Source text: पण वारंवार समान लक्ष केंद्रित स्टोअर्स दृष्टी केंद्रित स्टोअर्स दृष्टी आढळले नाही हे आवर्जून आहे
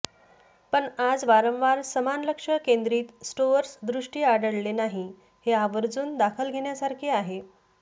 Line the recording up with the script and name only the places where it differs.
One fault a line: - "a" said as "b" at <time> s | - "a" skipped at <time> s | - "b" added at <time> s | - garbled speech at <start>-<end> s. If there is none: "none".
- "आज" added at 1.0 s
- "केंद्रित स्टोअर्स दृष्टी" skipped at 4.2 s
- "दखल घेण्यासारखे" added at 6.2 s